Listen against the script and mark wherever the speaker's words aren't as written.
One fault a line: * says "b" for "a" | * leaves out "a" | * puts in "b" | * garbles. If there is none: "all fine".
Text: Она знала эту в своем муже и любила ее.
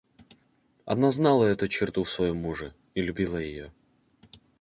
* puts in "черту"